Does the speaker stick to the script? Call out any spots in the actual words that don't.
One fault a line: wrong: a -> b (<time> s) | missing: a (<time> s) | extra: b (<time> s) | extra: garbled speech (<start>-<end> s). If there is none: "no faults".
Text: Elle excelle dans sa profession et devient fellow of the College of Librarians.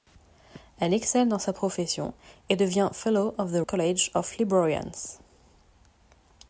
no faults